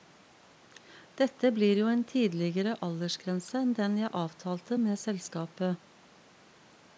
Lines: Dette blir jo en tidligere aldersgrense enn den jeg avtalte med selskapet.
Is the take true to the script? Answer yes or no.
yes